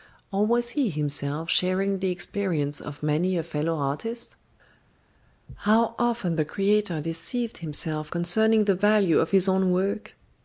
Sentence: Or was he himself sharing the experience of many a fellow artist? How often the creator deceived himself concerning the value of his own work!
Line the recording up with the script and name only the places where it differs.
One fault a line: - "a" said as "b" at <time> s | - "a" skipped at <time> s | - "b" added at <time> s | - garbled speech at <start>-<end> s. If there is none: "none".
none